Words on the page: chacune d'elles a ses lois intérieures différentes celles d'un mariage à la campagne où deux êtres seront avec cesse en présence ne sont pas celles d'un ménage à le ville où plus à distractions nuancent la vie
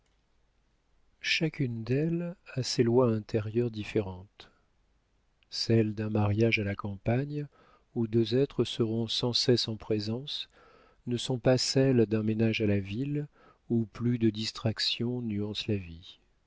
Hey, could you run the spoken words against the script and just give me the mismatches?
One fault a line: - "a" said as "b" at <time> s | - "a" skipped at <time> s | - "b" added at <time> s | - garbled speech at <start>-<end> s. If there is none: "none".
- "avec" said as "sans" at 9.1 s
- "le" said as "la" at 12.7 s
- "à" said as "de" at 14.2 s